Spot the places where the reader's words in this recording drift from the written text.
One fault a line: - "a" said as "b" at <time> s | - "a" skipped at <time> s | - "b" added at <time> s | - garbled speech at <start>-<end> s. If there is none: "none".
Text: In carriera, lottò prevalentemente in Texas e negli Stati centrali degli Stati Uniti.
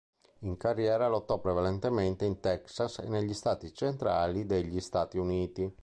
none